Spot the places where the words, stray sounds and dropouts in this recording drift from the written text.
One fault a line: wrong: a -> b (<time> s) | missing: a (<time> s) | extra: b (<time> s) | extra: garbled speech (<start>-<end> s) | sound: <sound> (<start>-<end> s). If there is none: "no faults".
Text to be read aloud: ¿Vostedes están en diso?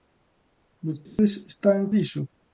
sound: dropout (1.1-1.2 s)